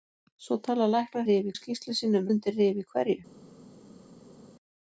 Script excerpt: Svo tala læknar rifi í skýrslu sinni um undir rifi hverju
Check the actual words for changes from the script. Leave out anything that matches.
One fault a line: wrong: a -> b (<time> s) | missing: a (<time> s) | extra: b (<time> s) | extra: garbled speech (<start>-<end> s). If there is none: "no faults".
no faults